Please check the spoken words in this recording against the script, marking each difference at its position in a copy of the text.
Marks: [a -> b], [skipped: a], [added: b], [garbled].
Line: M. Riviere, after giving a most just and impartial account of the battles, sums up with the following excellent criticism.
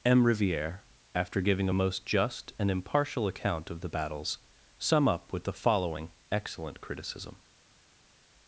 M. Riviere, after giving a most just and impartial account of the battles, [sums -> sum] up with the following excellent criticism.